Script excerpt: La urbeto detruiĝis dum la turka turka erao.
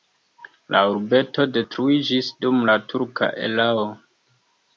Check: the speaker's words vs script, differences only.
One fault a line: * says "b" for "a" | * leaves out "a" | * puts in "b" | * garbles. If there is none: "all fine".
* leaves out "turka"